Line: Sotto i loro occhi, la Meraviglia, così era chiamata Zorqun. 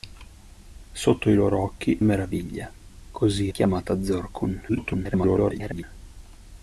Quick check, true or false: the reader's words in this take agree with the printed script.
false